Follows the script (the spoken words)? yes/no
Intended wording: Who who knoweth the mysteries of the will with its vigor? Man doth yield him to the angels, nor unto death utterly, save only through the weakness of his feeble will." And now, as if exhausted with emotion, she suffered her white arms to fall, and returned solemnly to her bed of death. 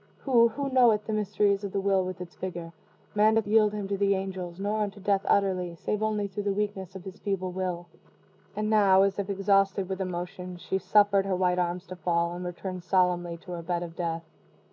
yes